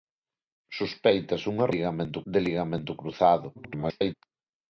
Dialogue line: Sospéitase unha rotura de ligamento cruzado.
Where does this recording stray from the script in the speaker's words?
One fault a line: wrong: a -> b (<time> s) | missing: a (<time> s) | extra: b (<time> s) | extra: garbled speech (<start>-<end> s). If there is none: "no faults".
wrong: rotura -> ligamento (1.7 s)
extra: garbled speech (3.5-4.1 s)